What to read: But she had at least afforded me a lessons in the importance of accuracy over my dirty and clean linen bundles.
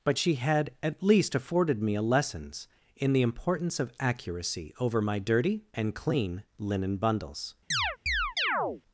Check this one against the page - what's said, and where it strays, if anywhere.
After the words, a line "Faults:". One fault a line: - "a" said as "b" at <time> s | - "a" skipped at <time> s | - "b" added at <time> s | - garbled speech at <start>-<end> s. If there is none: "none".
But she had at least afforded me a lessons in the importance of accuracy over my dirty and clean linen bundles.
Faults:
none